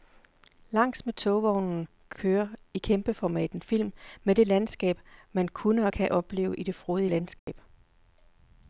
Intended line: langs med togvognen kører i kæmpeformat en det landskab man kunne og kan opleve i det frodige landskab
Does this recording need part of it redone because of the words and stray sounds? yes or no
yes